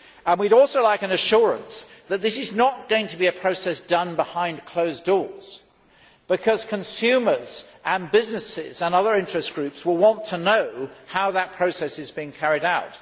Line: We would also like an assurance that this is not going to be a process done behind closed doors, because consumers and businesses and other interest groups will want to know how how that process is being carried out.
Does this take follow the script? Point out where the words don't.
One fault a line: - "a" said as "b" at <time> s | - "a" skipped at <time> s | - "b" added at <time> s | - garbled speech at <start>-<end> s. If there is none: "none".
- "how" skipped at 11.3 s